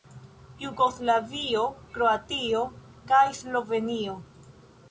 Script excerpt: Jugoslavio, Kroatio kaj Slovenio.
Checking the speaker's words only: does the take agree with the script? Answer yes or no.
yes